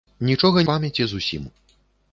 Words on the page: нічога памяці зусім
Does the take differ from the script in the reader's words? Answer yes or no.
no